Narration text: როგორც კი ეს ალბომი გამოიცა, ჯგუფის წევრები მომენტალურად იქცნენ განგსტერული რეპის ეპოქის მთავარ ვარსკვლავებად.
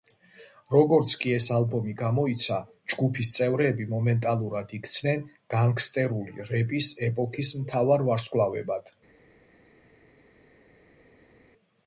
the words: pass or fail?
pass